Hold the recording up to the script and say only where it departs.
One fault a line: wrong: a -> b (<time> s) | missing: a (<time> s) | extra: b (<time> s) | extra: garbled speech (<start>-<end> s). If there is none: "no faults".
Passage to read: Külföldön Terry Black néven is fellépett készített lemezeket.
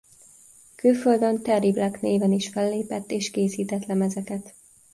extra: és (3.1 s)